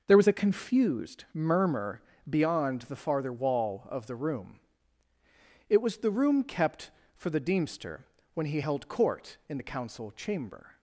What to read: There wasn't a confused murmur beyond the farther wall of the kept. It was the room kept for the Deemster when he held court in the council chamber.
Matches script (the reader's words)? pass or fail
fail